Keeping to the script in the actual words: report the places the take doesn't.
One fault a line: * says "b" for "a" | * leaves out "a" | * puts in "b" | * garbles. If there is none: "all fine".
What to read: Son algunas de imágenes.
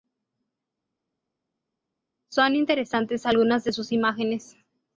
* puts in "interesantes"
* puts in "sus"